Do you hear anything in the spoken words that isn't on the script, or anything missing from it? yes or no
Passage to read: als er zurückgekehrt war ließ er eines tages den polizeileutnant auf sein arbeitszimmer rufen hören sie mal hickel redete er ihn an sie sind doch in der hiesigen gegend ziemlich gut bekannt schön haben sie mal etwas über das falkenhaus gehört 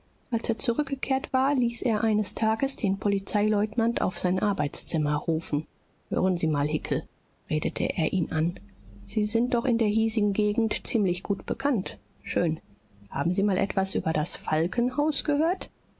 no